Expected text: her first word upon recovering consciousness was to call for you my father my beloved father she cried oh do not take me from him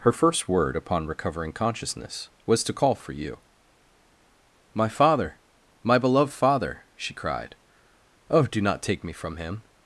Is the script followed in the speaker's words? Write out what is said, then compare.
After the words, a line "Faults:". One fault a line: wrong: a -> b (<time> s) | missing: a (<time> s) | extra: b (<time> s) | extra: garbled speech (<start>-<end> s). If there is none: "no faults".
her first word upon recovering consciousness was to call for you my father my beloved father she cried oh do not take me from him
Faults:
no faults